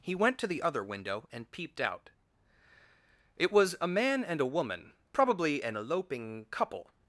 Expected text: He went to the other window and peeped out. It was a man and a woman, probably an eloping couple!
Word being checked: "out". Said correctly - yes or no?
yes